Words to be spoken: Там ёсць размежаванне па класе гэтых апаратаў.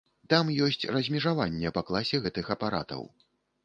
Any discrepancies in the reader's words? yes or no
no